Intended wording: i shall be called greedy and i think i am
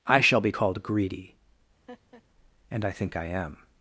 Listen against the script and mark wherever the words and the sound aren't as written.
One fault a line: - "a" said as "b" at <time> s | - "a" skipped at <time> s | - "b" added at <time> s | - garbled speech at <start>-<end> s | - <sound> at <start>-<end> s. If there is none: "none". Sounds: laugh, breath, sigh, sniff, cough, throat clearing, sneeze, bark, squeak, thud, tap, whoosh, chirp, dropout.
- laugh at 1.9-2.2 s